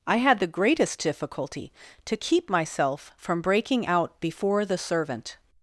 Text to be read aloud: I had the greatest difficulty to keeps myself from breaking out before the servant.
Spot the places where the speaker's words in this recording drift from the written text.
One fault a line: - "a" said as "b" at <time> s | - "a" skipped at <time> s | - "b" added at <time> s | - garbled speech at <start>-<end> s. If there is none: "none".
- "keeps" said as "keep" at 2.2 s